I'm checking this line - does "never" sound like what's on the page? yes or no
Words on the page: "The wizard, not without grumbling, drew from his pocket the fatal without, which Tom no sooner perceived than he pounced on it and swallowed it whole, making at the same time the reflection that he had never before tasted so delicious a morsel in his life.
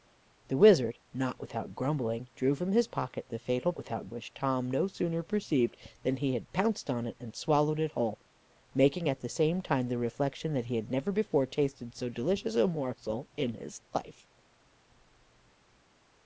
yes